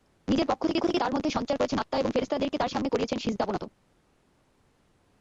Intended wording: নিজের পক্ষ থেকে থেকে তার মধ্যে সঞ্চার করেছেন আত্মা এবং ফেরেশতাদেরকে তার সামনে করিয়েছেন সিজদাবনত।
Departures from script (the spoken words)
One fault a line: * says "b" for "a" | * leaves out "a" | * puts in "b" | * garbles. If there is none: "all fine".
all fine